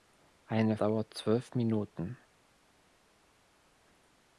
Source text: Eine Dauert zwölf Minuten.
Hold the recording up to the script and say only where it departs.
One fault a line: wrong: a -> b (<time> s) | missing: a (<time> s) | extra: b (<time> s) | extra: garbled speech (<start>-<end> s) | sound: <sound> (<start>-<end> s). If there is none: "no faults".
no faults